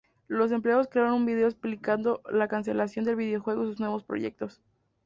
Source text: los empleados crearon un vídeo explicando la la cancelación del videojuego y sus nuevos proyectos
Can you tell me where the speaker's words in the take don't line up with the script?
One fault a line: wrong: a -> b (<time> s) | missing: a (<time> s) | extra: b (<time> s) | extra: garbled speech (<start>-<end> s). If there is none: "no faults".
missing: la (2.5 s)